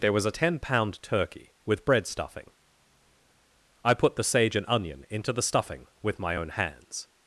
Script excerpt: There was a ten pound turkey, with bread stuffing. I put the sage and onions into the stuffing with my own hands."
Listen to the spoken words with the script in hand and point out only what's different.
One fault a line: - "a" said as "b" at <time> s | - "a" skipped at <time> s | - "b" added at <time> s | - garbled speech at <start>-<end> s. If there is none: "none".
- "onions" said as "onion" at 4.7 s